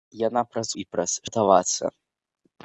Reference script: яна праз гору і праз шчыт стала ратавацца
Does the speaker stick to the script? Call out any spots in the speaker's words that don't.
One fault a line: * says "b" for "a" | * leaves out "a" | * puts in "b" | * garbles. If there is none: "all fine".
* leaves out "гору"
* leaves out "шчыт стала"